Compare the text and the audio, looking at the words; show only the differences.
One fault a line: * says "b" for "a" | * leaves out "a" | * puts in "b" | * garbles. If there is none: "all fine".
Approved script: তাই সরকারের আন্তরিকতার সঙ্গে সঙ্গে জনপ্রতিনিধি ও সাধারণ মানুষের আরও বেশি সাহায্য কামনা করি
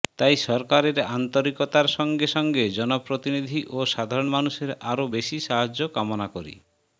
all fine